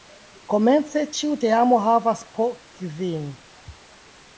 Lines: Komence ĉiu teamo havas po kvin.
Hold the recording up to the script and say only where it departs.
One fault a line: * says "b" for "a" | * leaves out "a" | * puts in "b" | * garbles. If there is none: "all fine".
all fine